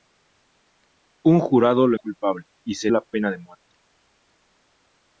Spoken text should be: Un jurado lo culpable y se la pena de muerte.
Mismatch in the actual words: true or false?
false